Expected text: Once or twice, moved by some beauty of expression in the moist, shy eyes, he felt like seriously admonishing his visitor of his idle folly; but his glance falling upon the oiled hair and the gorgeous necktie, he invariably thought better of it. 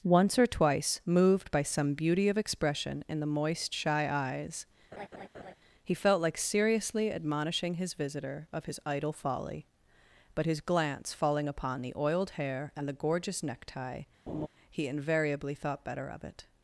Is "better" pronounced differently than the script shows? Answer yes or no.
no